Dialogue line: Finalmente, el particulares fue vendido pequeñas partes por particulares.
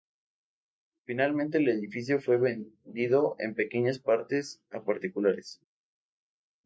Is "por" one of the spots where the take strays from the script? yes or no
yes